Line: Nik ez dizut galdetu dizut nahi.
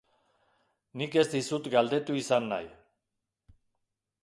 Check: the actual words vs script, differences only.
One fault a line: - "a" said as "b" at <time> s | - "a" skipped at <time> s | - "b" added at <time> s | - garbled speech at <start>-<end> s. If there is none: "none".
- "dizut" said as "izan" at 2.2 s